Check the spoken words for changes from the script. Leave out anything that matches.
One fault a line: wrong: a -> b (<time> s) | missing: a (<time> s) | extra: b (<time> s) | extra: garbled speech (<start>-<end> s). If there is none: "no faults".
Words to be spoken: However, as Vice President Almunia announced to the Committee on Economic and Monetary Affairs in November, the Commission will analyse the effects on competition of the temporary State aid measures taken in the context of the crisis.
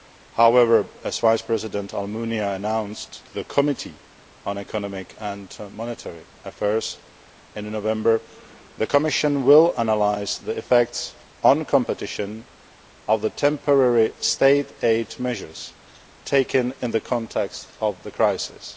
no faults